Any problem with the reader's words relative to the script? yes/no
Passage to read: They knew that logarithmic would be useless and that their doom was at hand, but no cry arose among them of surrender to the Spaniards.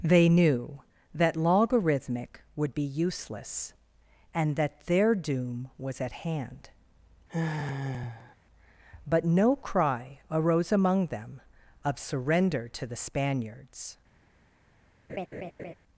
no